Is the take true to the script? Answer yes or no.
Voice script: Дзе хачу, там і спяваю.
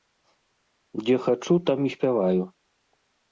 yes